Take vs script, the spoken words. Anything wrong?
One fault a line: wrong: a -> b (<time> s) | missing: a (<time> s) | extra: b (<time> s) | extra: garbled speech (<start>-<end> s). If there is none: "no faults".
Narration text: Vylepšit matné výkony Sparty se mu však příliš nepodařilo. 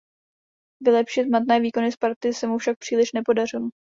no faults